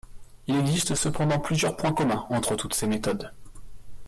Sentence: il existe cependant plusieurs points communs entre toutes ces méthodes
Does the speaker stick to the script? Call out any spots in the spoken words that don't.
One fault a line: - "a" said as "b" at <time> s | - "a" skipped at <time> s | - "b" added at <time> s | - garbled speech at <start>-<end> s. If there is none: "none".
none